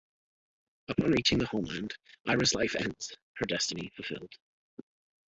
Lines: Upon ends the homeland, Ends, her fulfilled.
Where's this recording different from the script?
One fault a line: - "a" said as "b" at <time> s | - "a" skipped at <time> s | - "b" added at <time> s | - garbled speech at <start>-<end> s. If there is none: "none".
- "ends" said as "reaching" at 1.1 s
- "Ira's life" added at 2.3 s
- "destiny" added at 3.4 s